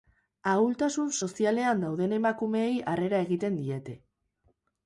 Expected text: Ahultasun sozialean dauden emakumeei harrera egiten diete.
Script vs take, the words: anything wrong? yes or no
no